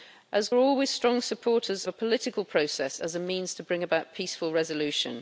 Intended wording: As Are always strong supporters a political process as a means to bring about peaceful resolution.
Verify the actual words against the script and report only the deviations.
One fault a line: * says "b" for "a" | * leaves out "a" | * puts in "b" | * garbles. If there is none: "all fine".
all fine